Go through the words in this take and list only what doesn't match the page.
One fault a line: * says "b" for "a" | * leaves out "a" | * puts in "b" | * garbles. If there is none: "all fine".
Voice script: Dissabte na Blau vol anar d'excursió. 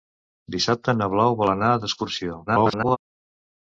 * garbles